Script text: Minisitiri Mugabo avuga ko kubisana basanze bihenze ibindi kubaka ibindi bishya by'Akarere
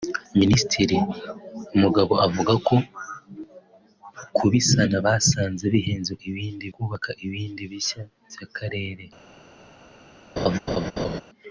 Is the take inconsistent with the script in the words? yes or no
no